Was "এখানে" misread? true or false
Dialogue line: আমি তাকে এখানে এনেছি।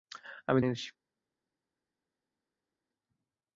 true